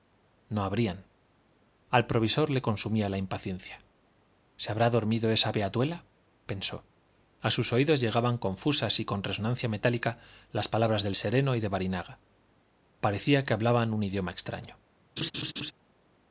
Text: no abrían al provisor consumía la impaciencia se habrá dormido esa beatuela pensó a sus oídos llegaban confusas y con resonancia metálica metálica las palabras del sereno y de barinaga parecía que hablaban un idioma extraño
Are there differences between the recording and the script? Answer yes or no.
yes